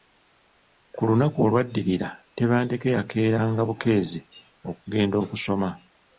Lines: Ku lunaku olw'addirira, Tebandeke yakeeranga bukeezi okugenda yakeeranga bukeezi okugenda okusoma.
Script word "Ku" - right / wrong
right